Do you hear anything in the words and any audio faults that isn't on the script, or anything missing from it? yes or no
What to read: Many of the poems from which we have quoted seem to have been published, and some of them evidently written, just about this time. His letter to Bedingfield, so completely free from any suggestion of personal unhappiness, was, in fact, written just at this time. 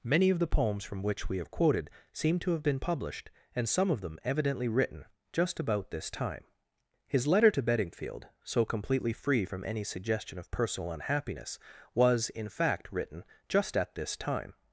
no